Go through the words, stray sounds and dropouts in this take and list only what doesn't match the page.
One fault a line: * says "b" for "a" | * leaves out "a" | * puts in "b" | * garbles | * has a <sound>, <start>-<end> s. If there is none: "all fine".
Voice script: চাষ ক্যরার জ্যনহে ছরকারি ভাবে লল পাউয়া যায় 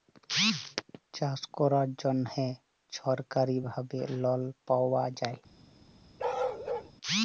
* has a bark, 6.2-6.9 s